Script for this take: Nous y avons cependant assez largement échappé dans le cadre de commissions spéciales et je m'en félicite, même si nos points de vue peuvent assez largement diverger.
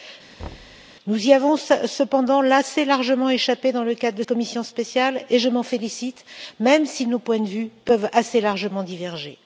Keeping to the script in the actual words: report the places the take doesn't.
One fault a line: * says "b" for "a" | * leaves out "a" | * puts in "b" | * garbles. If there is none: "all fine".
all fine